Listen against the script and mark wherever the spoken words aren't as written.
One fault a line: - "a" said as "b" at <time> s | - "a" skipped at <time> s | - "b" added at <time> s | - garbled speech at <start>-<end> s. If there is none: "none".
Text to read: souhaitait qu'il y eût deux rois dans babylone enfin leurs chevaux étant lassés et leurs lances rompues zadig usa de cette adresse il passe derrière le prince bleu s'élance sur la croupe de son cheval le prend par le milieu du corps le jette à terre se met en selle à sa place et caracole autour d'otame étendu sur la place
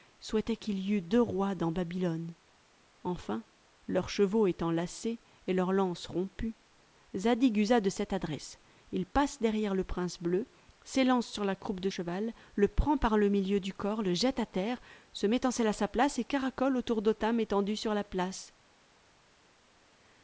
- "son" skipped at 11.9 s